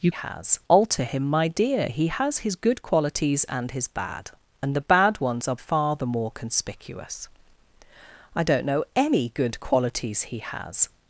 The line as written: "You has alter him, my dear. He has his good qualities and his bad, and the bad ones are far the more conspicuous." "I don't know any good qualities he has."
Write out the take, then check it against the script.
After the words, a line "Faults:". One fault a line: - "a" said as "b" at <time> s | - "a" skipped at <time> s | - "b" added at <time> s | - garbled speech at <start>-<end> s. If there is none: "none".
"You has alter him, my dear. He has his good qualities and his bad, and the bad ones are far the more conspicuous." "I don't know any good qualities he has."
Faults:
none